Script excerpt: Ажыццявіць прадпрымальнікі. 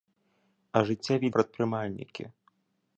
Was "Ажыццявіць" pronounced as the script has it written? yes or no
yes